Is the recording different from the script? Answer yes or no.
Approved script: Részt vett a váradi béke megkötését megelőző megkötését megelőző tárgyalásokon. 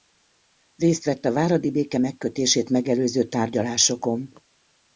yes